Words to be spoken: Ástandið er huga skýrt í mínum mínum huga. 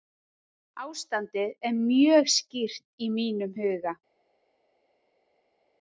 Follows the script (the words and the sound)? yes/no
no